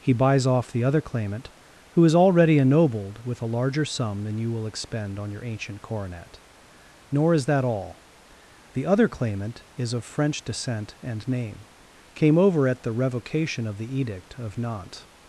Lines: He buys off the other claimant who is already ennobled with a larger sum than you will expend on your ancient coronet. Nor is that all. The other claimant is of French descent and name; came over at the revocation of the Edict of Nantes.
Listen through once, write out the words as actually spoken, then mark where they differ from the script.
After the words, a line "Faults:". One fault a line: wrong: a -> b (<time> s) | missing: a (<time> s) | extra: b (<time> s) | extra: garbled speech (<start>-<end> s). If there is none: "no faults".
He buys off the other claimant who is already ennobled with a larger sum than you will expend on your ancient coronet. Nor is that all. The other claimant is of French descent and name; came over at the revocation of the Edict of Nantes.
Faults:
no faults